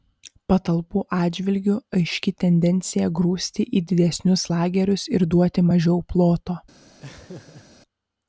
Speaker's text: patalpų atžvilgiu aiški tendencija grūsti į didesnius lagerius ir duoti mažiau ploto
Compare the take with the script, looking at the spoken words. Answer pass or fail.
pass